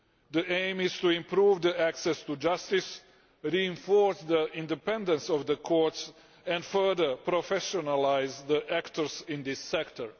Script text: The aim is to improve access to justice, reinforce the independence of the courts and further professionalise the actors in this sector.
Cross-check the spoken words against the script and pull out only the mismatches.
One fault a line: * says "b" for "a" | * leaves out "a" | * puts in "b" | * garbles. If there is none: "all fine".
all fine